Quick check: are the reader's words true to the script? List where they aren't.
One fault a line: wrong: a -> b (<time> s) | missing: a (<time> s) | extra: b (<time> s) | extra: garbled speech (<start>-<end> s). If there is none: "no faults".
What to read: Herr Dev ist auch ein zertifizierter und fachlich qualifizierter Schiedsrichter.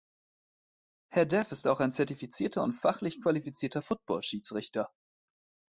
extra: Football (3.8 s)